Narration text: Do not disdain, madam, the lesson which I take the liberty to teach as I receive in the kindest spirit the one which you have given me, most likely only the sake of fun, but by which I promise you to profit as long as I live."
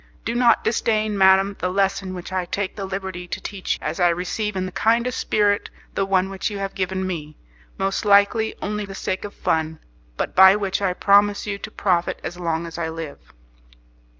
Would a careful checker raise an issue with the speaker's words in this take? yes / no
no